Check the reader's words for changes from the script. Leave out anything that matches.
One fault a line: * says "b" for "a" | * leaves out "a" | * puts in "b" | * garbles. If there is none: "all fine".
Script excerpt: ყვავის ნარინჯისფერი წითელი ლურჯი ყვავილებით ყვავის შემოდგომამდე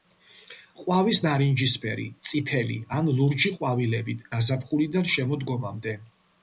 * puts in "ან"
* says "გაზაფხულიდან" for "ყვავის"